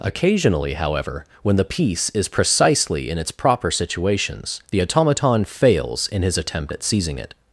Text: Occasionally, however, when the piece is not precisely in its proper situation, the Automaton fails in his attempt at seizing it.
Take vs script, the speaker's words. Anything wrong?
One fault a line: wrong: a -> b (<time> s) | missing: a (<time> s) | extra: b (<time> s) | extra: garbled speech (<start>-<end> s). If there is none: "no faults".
missing: not (2.3 s)
wrong: situation -> situations (3.7 s)